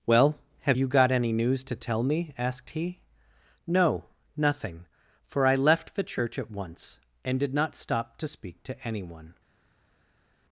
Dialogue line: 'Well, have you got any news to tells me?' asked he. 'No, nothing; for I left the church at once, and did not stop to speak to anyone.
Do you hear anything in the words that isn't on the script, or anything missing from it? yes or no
yes